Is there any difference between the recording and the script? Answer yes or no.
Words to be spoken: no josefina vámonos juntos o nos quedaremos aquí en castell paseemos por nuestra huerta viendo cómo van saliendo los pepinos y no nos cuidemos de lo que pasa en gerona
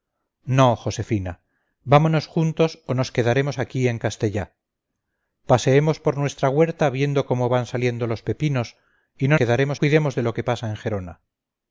yes